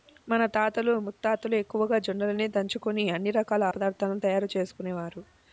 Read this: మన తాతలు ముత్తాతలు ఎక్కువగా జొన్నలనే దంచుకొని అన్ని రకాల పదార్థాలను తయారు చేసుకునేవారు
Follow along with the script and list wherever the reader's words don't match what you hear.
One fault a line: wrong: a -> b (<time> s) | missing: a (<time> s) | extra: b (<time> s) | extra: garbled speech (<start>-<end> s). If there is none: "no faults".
no faults